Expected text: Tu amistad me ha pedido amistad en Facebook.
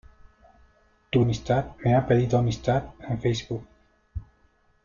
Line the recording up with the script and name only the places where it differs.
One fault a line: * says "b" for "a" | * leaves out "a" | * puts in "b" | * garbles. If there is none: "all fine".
all fine